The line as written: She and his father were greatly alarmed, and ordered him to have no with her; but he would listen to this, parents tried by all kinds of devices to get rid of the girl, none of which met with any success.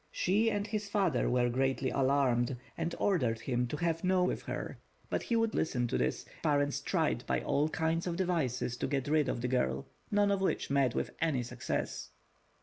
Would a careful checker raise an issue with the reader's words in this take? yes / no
no